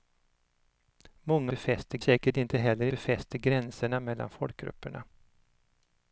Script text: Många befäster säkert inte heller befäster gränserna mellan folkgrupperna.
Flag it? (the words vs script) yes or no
no